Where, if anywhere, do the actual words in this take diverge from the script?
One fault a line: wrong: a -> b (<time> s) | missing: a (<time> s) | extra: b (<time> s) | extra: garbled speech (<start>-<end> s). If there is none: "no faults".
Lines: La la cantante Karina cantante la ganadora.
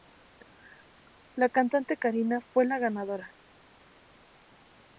missing: la (1.5 s)
wrong: cantante -> fue (2.4 s)